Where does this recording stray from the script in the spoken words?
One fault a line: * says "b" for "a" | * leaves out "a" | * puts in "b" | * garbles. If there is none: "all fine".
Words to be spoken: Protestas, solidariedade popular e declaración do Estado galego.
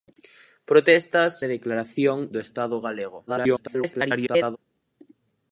* leaves out "solidariedade popular"
* garbles